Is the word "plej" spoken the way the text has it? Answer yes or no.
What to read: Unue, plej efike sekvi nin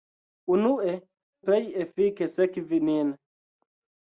yes